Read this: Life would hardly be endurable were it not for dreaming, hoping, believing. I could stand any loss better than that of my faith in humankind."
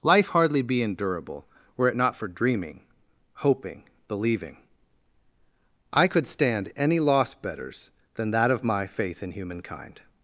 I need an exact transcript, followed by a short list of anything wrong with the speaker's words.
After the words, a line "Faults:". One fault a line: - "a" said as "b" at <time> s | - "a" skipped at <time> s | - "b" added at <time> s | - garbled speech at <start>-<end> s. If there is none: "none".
Life hardly be endurable were it not for dreaming, hoping, believing. I could stand any loss betters than that of my faith in humankind."
Faults:
- "would" skipped at 0.3 s
- "better" said as "betters" at 7.3 s